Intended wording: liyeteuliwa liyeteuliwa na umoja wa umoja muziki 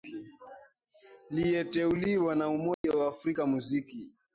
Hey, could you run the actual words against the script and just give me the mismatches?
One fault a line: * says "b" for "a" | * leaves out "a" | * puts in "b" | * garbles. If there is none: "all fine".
* leaves out "liyeteuliwa"
* says "afrika" for "umoja"